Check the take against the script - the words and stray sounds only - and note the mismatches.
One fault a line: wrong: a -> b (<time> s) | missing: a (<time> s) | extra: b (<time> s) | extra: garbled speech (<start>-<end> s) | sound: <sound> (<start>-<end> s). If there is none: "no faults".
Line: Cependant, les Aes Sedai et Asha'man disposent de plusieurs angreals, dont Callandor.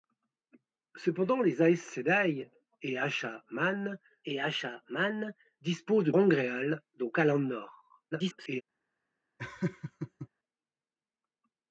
extra: et Asha'man (4.2 s)
missing: plusieurs (6.1 s)
extra: garbled speech (8.1-8.6 s)
sound: laugh (9.4-10.3 s)